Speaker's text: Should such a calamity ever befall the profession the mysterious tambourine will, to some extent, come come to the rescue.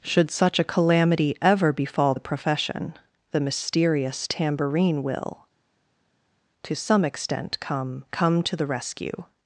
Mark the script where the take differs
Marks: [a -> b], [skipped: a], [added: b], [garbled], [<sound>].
Should such a calamity ever befall the profession the mysterious tambourine will, to some extent, come come to the rescue.